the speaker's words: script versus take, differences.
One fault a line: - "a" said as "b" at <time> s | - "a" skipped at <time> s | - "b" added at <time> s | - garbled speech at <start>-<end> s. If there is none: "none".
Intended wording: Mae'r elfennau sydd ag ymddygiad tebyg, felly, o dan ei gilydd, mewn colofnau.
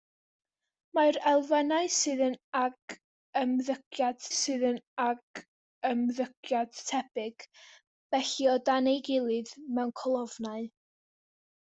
- "sydd ag ymddygiad" added at 4.4 s